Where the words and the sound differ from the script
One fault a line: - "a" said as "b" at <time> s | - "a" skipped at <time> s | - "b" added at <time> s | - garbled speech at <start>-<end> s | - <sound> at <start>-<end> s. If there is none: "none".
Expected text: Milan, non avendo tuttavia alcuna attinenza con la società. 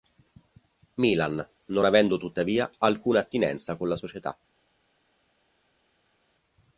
none